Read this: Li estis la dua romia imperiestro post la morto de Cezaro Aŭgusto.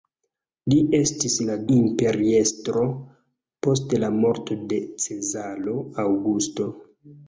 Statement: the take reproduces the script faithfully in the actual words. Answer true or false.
false